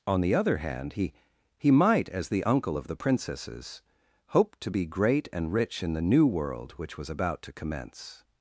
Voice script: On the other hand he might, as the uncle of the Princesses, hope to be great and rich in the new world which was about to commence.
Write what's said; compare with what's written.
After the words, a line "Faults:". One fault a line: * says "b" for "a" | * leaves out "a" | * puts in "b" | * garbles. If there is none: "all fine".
On the other hand he he might, as the uncle of the Princesses, hope to be great and rich in the new world which was about to commence.
Faults:
* puts in "he"